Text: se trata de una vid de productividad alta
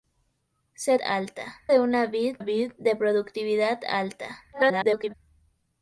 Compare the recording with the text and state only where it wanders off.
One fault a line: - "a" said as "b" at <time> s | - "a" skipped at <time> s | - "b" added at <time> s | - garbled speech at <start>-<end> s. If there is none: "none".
- "trata" said as "alta" at 1.0 s
- "vid" added at 2.4 s
- garbled speech at 4.5-5.1 s